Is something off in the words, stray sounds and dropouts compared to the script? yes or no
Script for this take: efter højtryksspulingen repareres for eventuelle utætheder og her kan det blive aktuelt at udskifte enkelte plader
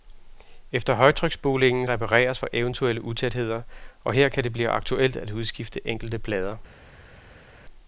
no